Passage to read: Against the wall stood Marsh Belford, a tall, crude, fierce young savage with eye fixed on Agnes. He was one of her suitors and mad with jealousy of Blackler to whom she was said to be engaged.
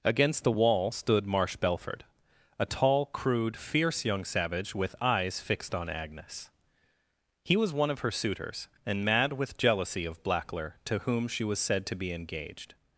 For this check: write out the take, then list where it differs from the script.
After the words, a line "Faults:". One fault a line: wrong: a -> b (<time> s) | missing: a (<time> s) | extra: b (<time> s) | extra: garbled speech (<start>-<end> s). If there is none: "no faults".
Against the wall stood Marsh Belford, a tall, crude, fierce young savage with eyes fixed on Agnes. He was one of her suitors and mad with jealousy of Blackler to whom she was said to be engaged.
Faults:
wrong: eye -> eyes (5.0 s)